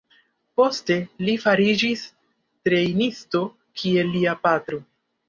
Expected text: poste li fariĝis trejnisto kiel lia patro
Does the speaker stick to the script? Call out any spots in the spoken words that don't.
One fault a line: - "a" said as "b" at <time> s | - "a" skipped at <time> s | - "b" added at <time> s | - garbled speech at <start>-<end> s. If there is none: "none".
none